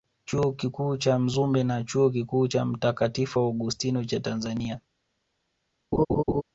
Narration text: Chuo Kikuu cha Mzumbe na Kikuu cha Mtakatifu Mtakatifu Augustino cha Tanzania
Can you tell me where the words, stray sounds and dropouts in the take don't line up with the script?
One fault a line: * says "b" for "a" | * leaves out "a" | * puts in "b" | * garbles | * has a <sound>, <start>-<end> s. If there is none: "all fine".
* puts in "Chuo"
* leaves out "Mtakatifu"
* has a laugh, 5.9-6.4 s